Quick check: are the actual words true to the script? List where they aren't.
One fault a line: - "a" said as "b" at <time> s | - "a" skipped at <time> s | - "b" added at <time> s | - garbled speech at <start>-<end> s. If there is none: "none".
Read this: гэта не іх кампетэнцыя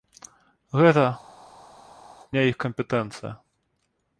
none